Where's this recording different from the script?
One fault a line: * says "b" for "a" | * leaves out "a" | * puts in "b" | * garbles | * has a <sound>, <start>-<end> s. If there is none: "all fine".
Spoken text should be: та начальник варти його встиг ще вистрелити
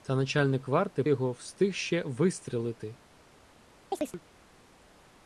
* has a chirp, 3.9-4.2 s